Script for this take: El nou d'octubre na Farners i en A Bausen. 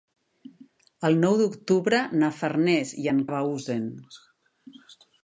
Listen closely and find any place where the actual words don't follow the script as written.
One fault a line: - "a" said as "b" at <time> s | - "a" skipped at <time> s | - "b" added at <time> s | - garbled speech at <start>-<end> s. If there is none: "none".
none